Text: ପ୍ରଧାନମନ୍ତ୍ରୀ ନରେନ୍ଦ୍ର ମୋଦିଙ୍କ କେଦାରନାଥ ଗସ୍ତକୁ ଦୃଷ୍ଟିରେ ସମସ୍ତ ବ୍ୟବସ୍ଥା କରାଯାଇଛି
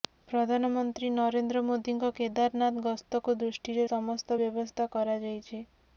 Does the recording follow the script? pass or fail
pass